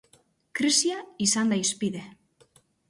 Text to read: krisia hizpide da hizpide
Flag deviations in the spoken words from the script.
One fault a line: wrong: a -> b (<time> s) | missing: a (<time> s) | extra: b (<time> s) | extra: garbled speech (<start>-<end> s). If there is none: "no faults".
wrong: hizpide -> izan (1.3 s)